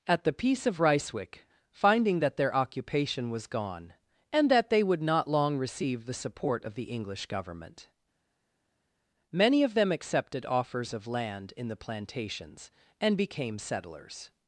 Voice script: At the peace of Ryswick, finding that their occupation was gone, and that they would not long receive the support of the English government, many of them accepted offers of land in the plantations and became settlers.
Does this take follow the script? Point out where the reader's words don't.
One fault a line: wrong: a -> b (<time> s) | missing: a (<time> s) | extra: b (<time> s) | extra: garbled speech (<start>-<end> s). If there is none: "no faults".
no faults